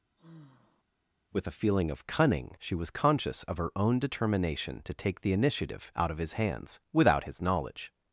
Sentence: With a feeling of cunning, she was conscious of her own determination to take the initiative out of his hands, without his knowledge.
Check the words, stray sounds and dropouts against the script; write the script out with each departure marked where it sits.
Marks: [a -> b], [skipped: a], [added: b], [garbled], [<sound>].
[sigh] With a feeling of cunning, she was conscious of her own determination to take the initiative out of his hands, without his knowledge.